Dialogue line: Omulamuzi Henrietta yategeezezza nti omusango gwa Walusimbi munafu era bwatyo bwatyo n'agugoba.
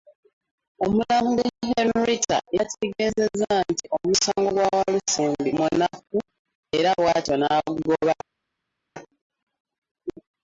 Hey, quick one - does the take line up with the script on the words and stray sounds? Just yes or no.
no